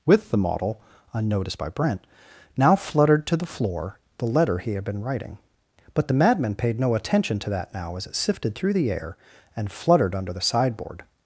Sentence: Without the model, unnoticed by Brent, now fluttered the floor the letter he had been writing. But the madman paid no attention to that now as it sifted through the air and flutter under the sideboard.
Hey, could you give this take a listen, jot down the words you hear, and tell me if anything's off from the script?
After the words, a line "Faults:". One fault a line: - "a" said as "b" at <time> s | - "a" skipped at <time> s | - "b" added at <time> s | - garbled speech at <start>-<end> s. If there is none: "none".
With the model, unnoticed by Brent, now fluttered to the floor the letter he had been writing. But the madman paid no attention to that now as it sifted through the air and fluttered under the sideboard.
Faults:
- "Without" said as "With" at 0.1 s
- "to" added at 3.3 s
- "flutter" said as "fluttered" at 9.7 s